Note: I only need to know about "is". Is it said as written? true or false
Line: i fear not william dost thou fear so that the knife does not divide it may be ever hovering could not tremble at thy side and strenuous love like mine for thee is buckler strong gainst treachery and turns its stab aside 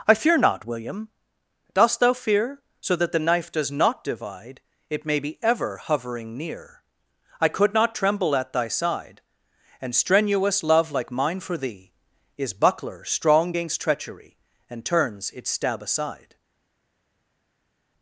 true